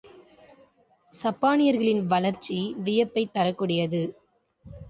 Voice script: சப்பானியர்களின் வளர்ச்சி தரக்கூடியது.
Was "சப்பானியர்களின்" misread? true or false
false